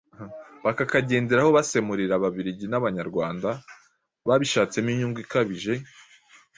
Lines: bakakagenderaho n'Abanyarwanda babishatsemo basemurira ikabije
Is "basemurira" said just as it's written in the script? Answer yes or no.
no